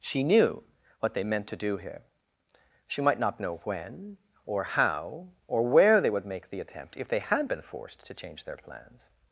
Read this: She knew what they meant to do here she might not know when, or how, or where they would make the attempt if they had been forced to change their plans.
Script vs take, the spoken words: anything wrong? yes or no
no